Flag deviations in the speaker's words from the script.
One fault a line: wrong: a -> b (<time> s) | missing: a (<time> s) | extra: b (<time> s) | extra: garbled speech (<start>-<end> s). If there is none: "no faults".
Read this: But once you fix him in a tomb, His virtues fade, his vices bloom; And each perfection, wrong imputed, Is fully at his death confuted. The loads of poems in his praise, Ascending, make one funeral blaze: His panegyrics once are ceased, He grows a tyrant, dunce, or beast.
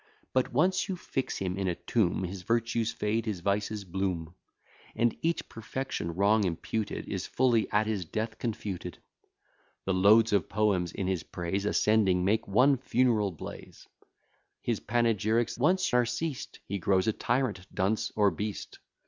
no faults